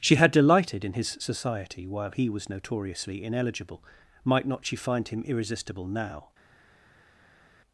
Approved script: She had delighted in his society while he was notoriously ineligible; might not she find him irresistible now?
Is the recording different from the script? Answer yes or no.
no